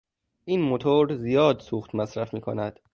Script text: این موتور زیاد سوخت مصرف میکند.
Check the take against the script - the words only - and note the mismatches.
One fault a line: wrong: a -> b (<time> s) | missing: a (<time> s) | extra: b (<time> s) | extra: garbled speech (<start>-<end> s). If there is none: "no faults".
no faults